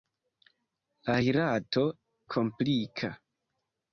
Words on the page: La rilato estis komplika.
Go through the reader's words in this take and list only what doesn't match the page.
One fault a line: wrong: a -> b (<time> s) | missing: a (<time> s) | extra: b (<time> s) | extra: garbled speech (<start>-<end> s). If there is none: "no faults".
missing: estis (1.8 s)